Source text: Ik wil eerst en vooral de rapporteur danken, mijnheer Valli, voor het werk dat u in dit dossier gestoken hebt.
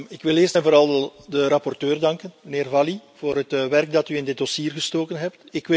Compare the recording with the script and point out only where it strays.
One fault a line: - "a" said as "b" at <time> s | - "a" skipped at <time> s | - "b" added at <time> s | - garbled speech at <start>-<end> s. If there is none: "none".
none